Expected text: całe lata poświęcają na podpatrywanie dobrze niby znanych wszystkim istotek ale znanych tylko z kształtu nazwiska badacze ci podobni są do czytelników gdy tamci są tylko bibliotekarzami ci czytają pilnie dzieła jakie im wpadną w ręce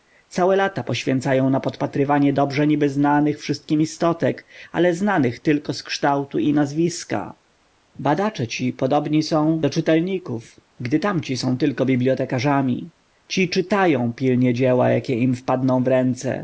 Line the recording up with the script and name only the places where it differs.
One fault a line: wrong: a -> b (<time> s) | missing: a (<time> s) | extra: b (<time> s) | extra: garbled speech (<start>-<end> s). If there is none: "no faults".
extra: i (6.4 s)